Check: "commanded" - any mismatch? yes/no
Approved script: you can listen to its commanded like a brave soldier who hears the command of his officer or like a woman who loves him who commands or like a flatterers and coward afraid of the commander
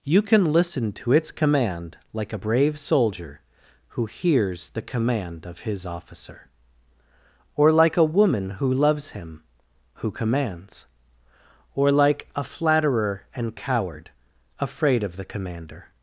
yes